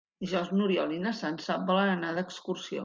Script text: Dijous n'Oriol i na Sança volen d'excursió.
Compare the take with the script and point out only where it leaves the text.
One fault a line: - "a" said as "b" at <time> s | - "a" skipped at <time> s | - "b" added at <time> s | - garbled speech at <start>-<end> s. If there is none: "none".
- "anar" added at 2.0 s